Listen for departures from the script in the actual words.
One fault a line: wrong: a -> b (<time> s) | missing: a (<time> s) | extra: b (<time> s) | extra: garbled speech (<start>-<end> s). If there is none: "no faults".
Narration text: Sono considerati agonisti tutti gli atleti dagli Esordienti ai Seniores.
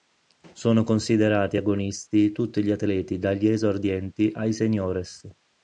no faults